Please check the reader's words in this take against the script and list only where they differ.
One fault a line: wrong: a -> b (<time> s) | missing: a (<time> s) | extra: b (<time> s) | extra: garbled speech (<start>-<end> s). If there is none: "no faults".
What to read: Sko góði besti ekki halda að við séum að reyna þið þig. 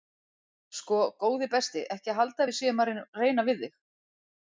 wrong: þið -> við (3.5 s)